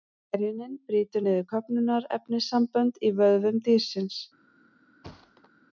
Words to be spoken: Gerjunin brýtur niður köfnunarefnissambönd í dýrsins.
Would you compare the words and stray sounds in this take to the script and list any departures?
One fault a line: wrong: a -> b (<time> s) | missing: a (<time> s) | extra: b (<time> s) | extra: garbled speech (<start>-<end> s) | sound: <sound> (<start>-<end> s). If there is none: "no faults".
extra: vöðvum (3.2 s)
sound: thud (5.0-5.5 s)